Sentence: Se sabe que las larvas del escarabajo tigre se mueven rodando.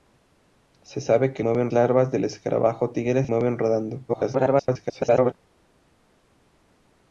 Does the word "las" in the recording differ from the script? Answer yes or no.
yes